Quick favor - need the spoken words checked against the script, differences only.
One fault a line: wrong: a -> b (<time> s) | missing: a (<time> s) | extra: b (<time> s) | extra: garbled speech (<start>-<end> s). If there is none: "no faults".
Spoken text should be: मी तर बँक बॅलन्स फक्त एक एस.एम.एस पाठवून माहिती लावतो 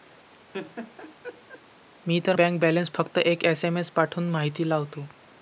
no faults